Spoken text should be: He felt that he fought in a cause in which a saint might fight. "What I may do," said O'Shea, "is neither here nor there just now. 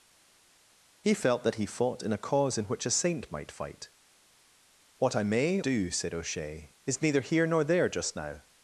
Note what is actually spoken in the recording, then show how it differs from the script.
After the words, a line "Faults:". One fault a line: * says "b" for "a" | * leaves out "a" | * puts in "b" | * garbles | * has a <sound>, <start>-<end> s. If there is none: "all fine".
He felt that he fought in a cause in which a saint might fight. "What I may do," said O'Shea, "is neither here nor there just now.
Faults:
all fine